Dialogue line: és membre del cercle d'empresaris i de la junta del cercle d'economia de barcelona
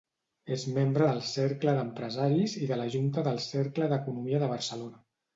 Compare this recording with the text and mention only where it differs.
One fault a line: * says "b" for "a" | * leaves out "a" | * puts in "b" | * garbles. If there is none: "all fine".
all fine